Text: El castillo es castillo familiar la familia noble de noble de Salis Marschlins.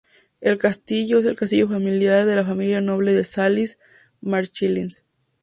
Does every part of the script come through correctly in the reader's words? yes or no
no